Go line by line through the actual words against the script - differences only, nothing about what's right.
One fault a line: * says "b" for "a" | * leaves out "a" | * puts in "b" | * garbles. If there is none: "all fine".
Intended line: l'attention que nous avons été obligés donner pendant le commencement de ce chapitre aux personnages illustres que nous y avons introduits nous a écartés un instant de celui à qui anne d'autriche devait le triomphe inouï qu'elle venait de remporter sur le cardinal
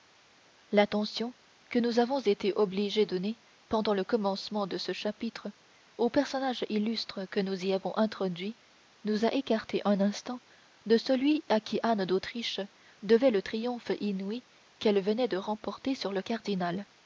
all fine